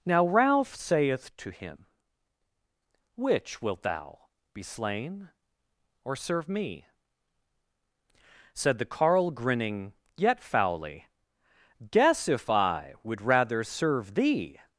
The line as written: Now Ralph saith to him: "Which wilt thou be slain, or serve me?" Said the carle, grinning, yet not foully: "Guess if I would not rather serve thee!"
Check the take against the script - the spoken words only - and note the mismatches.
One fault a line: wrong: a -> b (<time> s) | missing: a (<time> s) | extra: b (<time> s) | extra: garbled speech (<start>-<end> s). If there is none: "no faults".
missing: not (10.4 s)
missing: not (13.2 s)